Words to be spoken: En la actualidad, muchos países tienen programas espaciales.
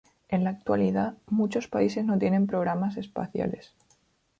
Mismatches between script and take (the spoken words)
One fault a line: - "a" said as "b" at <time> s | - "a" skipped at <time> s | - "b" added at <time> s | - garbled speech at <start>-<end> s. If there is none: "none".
- "no" added at 2.1 s